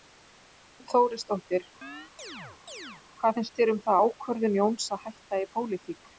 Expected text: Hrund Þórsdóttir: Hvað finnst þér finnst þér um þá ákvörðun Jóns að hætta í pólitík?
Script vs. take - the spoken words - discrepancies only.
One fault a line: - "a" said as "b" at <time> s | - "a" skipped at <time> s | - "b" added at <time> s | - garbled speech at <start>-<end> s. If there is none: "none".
- "finnst þér" skipped at 3.7 s